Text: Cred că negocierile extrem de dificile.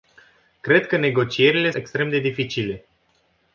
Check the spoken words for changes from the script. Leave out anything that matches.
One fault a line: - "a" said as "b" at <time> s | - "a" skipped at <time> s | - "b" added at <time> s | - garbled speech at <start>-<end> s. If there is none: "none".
none